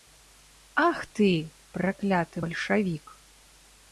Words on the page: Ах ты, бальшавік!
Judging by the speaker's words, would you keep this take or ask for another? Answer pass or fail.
fail